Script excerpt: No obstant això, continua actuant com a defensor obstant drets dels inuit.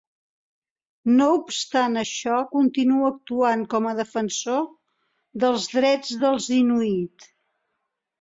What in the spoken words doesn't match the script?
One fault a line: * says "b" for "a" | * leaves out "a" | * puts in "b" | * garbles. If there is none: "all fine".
* says "dels" for "obstant"